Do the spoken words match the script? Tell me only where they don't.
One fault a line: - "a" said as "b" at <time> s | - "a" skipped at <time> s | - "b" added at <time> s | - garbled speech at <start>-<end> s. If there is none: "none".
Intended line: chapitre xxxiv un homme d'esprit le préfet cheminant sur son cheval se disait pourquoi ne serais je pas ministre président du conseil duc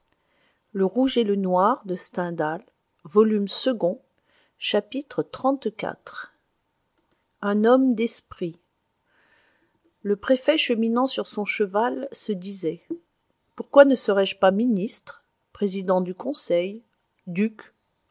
none